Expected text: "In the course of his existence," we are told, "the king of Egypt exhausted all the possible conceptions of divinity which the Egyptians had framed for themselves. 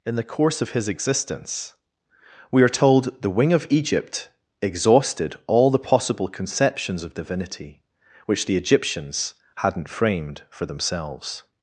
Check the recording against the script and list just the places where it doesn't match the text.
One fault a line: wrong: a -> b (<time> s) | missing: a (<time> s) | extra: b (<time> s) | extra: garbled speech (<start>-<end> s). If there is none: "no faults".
wrong: king -> wing (3.3 s)
wrong: had -> hadn't (9.5 s)